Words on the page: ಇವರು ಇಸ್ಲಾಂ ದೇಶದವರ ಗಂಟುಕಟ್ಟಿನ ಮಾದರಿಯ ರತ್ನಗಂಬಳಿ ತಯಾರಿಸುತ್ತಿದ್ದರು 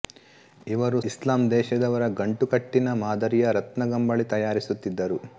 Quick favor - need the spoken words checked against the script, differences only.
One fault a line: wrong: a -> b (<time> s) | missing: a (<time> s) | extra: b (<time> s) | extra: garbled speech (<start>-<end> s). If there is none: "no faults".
no faults